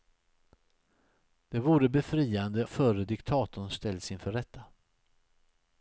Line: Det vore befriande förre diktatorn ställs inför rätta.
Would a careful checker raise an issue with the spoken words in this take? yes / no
no